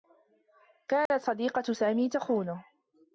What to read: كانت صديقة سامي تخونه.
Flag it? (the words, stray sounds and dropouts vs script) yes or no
yes